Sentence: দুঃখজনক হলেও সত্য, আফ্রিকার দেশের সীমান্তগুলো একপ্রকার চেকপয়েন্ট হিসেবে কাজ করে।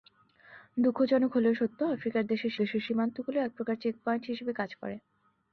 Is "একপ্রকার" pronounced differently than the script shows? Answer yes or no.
no